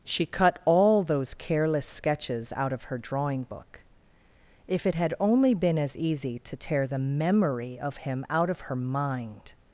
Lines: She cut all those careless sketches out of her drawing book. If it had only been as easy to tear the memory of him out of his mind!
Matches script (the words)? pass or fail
fail